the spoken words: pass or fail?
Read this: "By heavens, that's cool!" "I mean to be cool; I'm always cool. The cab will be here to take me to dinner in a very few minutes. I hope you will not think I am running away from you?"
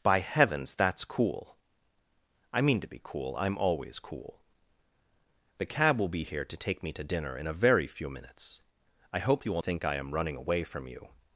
fail